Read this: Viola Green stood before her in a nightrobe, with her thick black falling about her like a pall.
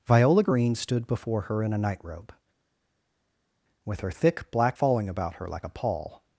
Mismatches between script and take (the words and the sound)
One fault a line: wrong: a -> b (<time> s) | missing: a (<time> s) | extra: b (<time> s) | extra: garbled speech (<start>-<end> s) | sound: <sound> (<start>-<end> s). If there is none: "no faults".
no faults